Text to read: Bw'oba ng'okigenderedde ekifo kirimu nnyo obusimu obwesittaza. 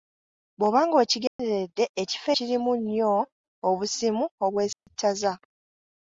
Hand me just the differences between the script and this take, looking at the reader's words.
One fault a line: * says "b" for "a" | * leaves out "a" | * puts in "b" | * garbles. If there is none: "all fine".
all fine